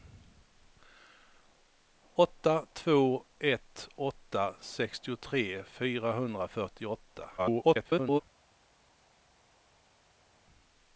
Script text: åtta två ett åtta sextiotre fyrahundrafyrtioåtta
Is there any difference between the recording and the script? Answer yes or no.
yes